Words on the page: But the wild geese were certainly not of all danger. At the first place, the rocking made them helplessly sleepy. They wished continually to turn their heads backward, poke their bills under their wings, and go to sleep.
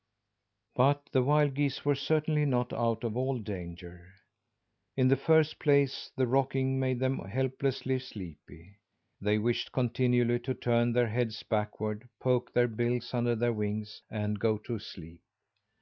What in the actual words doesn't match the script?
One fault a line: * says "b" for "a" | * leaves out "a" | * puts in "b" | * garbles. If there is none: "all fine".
* puts in "out"
* says "In" for "At"